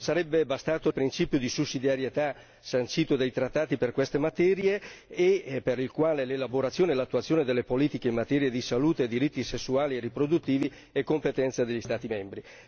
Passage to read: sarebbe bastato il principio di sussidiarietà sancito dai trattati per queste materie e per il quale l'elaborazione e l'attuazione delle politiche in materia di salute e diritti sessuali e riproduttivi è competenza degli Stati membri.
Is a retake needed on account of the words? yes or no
no